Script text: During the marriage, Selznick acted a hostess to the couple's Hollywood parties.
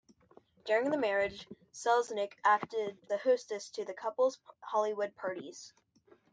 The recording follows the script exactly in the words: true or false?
true